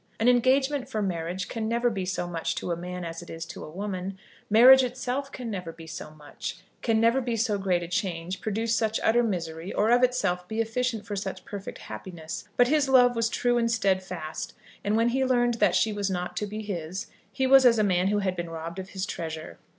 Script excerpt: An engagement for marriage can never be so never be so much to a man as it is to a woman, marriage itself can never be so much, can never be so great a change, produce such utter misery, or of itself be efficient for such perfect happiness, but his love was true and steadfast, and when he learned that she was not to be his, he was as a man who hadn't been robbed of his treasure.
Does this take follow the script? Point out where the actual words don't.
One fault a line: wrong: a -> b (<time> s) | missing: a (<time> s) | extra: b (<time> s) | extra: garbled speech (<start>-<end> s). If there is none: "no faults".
missing: never be so (2.2 s)
wrong: hadn't -> had (18.2 s)